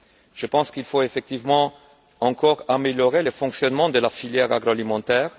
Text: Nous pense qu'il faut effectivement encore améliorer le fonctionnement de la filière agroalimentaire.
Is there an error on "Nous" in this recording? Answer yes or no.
yes